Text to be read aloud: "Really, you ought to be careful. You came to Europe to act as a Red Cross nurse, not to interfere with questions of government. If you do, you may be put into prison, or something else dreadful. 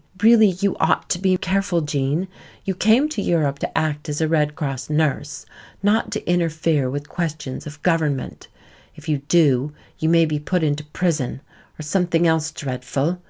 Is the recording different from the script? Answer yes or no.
yes